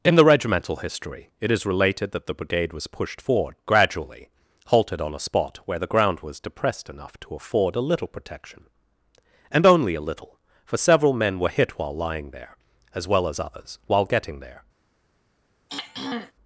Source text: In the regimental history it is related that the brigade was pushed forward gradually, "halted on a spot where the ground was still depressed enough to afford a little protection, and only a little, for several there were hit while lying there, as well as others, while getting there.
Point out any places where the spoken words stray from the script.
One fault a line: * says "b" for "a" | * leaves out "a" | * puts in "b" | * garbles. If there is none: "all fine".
* leaves out "still"
* says "men" for "there"